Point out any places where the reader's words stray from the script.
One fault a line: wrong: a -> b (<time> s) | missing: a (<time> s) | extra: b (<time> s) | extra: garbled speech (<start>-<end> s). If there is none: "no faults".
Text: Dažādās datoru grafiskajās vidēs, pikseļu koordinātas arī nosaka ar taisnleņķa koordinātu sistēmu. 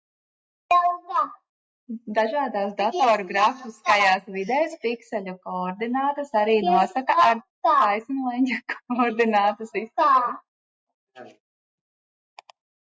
no faults